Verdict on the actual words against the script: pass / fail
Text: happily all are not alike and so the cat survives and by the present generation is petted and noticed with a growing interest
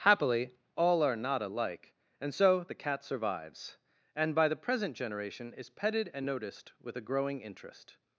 pass